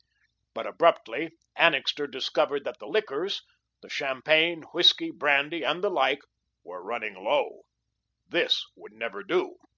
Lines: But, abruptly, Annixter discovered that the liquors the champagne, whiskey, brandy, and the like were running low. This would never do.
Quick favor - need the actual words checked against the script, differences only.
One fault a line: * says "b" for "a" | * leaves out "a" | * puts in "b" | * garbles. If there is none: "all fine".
all fine